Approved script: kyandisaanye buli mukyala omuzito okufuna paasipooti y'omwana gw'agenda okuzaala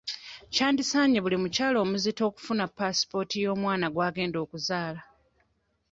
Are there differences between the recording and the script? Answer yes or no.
no